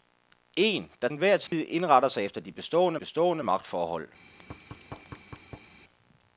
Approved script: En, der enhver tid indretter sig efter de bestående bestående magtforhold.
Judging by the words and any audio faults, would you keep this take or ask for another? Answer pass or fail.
fail